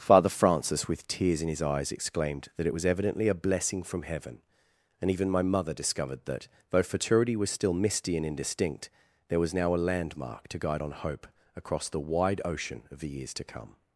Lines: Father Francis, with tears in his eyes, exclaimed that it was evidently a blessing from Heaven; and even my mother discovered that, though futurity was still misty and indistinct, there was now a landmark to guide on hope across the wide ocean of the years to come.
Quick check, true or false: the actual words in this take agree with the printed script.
true